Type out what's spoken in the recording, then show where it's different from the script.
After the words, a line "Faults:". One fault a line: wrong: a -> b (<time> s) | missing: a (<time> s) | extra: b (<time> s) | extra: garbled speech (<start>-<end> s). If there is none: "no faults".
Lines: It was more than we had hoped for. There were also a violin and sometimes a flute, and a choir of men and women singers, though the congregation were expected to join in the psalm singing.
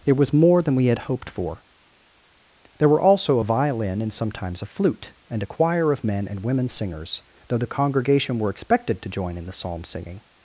It was more than we had hoped for. There were also a violin and sometimes a flute, and a choir of men and women singers, though the congregation were expected to join in the psalm singing.
Faults:
no faults